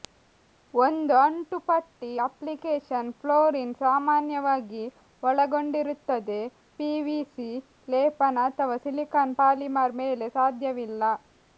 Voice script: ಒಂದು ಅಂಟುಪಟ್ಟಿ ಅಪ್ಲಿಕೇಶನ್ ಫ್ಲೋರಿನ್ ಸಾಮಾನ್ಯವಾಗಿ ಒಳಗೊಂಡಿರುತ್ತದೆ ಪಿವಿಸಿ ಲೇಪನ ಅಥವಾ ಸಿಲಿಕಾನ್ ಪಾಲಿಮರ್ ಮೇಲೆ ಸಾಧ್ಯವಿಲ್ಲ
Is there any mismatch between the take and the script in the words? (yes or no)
no